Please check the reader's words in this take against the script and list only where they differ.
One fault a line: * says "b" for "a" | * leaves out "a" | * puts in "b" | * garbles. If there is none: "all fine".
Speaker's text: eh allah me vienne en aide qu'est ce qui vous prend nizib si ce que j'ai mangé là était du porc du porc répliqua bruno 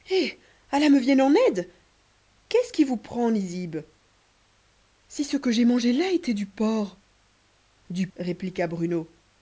* leaves out "porc"